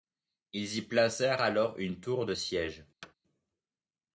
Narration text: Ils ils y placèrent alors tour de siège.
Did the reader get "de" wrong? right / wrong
right